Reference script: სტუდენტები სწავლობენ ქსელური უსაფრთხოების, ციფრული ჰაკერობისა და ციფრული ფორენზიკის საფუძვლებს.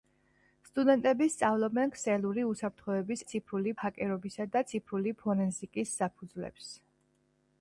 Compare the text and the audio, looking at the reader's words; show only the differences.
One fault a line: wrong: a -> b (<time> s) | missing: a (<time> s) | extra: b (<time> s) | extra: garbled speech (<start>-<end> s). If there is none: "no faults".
no faults